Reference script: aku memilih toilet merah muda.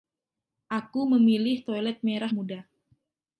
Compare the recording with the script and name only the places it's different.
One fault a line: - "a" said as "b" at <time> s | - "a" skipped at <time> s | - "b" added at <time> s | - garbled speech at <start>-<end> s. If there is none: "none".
none